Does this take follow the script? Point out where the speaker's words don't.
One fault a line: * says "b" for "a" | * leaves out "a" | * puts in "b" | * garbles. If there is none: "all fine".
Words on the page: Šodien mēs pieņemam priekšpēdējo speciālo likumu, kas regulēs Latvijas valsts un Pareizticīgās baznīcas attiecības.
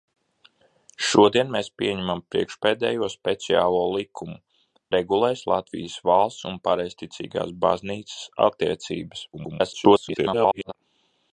* leaves out "kas"
* garbles